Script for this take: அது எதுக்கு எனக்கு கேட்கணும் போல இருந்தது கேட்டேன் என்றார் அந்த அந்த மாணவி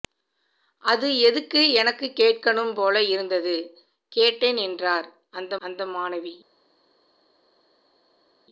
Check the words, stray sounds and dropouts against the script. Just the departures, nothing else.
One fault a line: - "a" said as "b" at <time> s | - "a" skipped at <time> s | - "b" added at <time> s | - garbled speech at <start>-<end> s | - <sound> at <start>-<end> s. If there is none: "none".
none